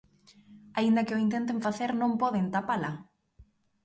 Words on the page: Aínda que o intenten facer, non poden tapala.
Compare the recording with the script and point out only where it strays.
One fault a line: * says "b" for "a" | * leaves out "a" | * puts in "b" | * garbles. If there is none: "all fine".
all fine